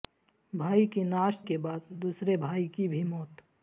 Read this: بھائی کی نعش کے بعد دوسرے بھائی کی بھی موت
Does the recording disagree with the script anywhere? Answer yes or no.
no